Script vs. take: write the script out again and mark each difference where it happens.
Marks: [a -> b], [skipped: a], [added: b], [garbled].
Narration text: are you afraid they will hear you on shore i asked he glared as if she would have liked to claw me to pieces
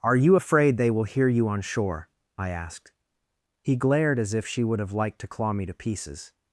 are you afraid they will hear you on shore i asked he glared as if she would have liked to claw me to pieces